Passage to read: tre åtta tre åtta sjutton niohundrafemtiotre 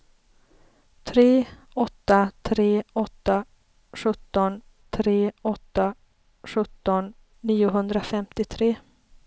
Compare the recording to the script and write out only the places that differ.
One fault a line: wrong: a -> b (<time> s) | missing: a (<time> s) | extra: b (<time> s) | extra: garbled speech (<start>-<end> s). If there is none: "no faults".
extra: tre åtta sjutton (4.9 s)